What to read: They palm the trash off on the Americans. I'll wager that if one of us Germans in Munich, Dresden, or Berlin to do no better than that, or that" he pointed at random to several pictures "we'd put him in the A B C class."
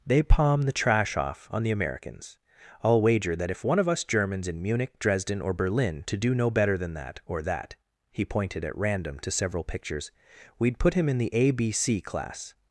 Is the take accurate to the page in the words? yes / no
yes